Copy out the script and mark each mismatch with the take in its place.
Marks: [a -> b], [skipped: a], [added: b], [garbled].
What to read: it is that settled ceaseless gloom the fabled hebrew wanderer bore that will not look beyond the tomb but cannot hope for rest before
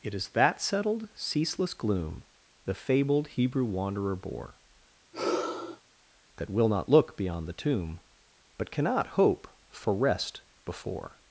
it is that settled ceaseless gloom the fabled hebrew wanderer bore that will not look beyond the tomb but cannot hope for rest before